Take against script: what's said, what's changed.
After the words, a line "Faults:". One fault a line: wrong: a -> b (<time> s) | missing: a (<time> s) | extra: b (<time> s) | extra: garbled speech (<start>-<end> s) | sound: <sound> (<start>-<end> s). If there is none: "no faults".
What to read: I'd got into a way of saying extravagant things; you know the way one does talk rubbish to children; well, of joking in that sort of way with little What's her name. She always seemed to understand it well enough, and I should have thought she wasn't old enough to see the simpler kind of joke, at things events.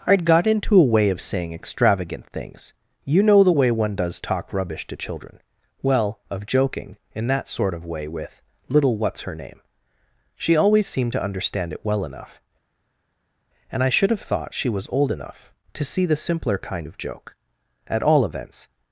I'd got into a way of saying extravagant things; you know the way one does talk rubbish to children; well, of joking in that sort of way with little What's her name. She always seemed to understand it well enough, and I should have thought she was old enough to see the simpler kind of joke, at all events.
Faults:
wrong: wasn't -> was (14.7 s)
wrong: things -> all (18.0 s)